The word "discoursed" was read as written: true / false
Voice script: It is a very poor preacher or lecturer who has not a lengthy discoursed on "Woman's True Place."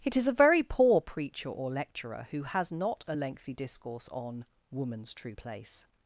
false